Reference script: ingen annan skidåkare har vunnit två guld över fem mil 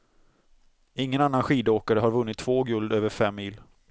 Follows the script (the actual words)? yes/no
yes